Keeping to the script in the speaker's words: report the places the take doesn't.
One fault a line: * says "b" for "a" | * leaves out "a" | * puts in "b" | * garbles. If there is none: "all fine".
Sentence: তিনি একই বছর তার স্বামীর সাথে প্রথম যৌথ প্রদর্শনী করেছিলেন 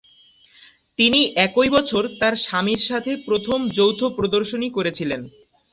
all fine